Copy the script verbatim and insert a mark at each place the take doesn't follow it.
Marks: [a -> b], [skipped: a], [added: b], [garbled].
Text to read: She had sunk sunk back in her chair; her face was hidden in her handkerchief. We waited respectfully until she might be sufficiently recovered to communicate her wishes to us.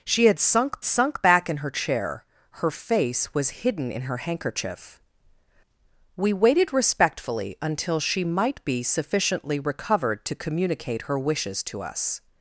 She had sunk sunk back in her chair; her face was hidden in her handkerchief. We waited respectfully until she might be sufficiently recovered to communicate her wishes to us.